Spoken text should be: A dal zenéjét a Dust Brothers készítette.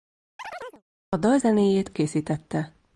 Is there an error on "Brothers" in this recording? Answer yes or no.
yes